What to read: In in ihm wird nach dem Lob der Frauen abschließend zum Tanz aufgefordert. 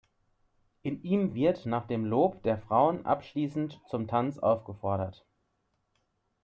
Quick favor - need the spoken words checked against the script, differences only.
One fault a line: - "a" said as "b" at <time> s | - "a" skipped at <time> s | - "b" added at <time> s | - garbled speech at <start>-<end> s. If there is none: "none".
- "in" skipped at 1.0 s